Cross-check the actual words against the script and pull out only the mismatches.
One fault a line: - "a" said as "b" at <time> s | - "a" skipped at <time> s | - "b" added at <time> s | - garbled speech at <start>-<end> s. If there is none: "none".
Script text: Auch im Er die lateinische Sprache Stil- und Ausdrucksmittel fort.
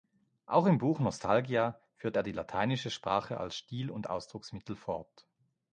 - "Buch Nostalgia führt" added at 0.8 s
- "als" added at 3.4 s